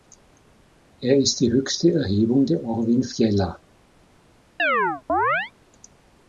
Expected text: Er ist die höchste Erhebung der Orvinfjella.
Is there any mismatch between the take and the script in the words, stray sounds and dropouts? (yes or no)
yes